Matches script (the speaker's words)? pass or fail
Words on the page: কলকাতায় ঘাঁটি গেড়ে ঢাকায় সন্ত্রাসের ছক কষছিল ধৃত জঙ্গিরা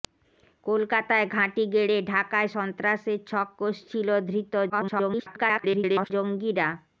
fail